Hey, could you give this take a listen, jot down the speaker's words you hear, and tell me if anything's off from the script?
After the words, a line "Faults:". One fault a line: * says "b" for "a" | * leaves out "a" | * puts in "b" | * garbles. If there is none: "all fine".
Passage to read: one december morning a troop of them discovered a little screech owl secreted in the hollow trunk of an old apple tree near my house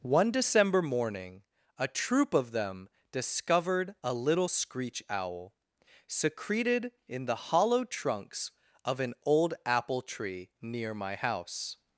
one december morning a troop of them discovered a little screech owl secreted in the hollow trunks of an old apple tree near my house
Faults:
* says "trunks" for "trunk"